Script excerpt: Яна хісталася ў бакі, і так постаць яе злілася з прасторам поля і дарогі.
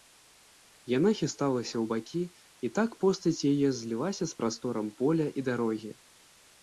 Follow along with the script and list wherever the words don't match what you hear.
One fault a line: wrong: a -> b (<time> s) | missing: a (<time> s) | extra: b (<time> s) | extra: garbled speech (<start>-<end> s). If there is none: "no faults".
no faults